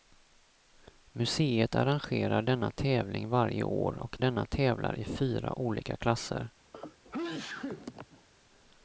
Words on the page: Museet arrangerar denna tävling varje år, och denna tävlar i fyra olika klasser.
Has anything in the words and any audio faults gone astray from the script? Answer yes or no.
yes